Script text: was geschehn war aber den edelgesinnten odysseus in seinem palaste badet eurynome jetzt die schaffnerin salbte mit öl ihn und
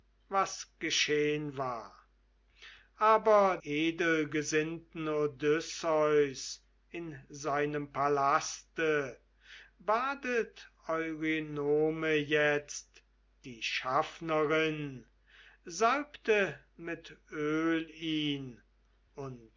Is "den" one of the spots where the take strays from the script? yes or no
yes